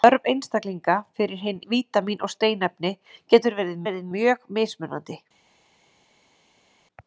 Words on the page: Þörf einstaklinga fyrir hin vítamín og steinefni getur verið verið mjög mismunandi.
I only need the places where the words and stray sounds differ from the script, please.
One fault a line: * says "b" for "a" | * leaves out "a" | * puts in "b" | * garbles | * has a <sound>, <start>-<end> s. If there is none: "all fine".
all fine